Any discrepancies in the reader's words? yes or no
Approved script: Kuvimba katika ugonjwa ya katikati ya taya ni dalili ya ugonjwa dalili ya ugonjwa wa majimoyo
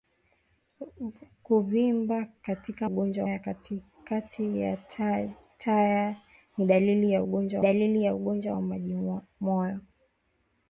no